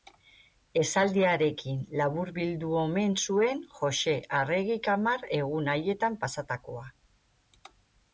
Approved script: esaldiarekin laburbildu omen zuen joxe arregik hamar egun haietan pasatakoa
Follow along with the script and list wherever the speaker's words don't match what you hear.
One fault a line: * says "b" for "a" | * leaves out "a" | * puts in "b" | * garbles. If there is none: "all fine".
all fine